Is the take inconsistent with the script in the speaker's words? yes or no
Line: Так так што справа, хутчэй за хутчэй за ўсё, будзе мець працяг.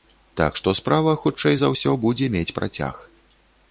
yes